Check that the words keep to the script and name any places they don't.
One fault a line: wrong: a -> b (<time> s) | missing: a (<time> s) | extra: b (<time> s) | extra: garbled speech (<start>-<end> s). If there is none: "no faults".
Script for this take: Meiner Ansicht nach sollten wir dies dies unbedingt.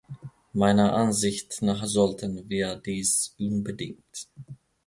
missing: dies (3.3 s)